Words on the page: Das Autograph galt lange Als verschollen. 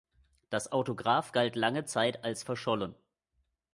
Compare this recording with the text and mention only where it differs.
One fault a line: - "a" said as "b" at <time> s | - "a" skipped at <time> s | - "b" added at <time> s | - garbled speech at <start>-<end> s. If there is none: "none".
- "Zeit" added at 1.8 s